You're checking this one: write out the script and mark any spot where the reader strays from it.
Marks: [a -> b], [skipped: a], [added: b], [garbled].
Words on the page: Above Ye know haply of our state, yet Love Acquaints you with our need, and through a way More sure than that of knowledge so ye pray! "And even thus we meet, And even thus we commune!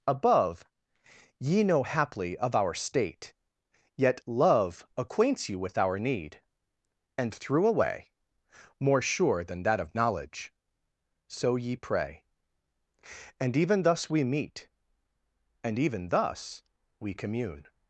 Above Ye know haply of our state, yet Love Acquaints you with our need, and through a way More sure than that of knowledge so ye pray! "And even thus we meet, And even thus we commune!